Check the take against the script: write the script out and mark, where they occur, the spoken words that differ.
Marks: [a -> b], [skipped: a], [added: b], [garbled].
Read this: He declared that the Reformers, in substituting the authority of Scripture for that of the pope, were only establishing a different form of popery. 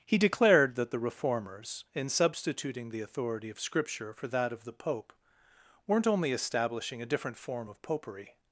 He declared that the Reformers, in substituting the authority of Scripture for that of the pope, [were -> weren't] only establishing a different form of popery.